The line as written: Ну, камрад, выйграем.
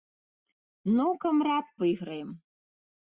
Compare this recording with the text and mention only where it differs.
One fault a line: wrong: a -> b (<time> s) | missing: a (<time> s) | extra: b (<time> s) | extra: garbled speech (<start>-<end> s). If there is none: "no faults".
no faults